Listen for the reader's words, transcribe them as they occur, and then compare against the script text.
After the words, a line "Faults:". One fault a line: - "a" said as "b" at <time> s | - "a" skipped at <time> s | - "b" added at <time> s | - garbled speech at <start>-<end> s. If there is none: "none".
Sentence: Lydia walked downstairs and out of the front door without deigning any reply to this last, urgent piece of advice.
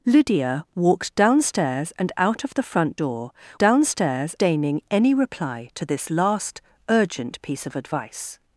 Lydia walked downstairs and out of the front door downstairs deigning any reply to this last, urgent piece of advice.
Faults:
- "without" said as "downstairs" at 3.6 s